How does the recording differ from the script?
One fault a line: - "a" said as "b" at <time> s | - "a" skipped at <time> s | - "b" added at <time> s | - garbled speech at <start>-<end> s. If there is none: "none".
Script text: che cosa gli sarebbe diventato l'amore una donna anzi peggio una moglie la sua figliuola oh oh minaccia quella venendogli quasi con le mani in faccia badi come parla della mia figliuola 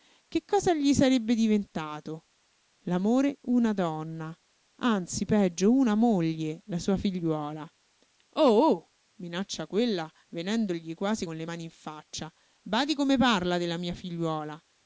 none